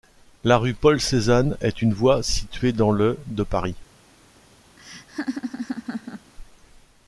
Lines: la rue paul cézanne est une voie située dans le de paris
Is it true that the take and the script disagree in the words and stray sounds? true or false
true